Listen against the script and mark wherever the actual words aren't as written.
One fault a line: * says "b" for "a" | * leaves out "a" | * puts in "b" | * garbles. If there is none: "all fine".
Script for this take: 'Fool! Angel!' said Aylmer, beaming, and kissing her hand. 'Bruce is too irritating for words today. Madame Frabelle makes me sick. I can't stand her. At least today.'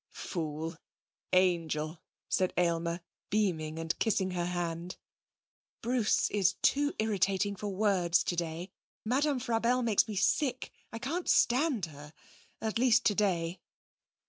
all fine